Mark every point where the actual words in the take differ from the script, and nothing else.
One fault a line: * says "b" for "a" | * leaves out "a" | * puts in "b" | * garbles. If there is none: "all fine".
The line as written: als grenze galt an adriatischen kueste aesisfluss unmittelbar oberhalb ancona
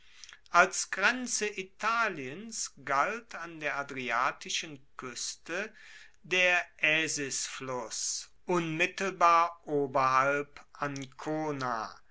* puts in "italiens"
* puts in "der"
* puts in "der"